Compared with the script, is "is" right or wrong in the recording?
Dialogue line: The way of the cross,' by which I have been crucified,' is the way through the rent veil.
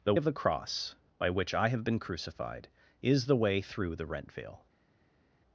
right